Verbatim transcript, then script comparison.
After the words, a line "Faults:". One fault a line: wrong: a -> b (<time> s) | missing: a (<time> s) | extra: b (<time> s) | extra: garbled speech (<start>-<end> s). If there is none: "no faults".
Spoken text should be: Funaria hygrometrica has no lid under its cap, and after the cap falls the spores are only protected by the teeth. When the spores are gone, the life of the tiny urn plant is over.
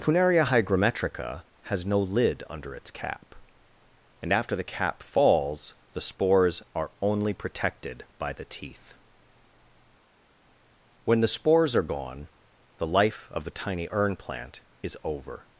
Funaria hygrometrica has no lid under its cap, and after the cap falls the spores are only protected by the teeth. When the spores are gone, the life of the tiny urn plant is over.
Faults:
no faults